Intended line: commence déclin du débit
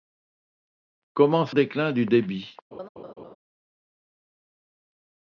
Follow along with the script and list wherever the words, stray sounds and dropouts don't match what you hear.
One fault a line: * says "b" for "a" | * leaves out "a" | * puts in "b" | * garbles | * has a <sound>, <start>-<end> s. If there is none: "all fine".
* has a laugh, 2.7-3.4 s